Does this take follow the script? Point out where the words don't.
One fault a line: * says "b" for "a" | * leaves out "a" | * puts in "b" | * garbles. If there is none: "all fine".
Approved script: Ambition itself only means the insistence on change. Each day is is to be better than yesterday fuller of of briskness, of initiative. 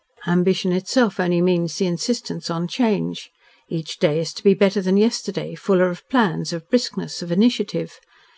* leaves out "is"
* puts in "plans"